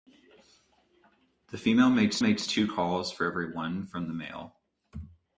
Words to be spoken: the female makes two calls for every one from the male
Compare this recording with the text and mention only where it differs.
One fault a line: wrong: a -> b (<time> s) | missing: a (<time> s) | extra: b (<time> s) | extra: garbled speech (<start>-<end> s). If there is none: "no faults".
extra: makes (2.2 s)